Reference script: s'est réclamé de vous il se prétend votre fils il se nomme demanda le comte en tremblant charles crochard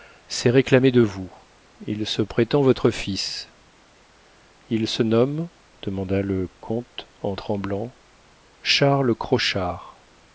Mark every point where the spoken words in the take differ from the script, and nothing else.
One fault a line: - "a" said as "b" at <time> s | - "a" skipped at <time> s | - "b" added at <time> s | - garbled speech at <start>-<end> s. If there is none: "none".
none